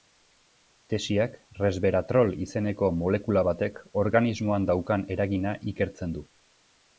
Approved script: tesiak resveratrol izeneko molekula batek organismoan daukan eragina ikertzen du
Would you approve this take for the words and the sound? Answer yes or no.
yes